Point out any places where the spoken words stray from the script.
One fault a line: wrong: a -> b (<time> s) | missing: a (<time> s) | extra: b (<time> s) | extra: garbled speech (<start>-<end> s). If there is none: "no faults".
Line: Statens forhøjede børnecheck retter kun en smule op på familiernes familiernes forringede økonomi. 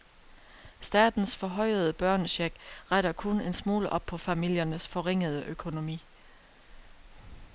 missing: familiernes (4.9 s)